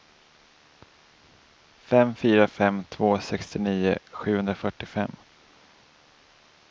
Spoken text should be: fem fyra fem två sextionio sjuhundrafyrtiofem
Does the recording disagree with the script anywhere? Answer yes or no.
no